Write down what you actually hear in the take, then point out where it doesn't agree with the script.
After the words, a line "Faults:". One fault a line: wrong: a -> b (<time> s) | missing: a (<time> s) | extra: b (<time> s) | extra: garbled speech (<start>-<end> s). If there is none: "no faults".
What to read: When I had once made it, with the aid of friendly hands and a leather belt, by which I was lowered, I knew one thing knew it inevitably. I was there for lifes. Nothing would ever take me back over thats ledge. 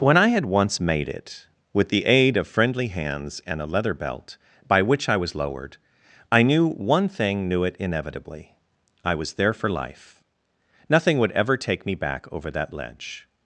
When I had once made it, with the aid of friendly hands and a leather belt, by which I was lowered, I knew one thing knew it inevitably. I was there for life. Nothing would ever take me back over that ledge.
Faults:
wrong: lifes -> life (9.7 s)
wrong: thats -> that (12.5 s)